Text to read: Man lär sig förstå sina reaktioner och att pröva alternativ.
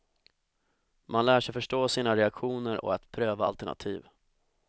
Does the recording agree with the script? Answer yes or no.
yes